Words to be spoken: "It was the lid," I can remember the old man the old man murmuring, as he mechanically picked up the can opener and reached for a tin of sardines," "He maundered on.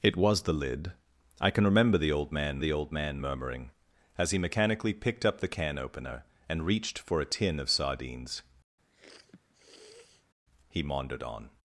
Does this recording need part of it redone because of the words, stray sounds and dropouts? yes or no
yes